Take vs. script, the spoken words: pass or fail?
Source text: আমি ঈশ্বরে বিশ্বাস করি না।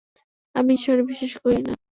pass